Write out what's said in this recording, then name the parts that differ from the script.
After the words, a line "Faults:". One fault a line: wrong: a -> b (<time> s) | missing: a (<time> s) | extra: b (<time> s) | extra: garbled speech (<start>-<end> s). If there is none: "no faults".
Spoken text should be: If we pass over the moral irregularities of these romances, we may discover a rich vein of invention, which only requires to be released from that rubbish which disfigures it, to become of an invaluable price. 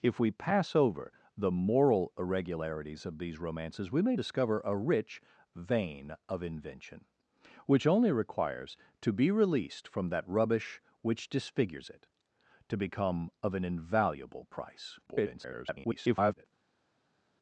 If we pass over the moral irregularities of these romances, we may discover a rich vein of invention, which only requires to be released from that rubbish which disfigures it, to become of an invaluable price. [garbled]
Faults:
extra: garbled speech (15.1-16.4 s)